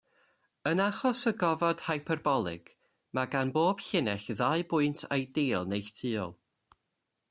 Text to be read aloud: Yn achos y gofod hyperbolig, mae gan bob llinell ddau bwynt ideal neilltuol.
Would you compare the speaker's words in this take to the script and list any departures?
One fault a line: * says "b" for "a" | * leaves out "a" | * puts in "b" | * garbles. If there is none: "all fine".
all fine